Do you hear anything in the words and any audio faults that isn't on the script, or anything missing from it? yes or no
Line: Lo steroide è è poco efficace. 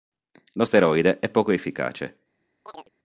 yes